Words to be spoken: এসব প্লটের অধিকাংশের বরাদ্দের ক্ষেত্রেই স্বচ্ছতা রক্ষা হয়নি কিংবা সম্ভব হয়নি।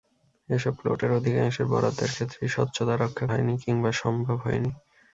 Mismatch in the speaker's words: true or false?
false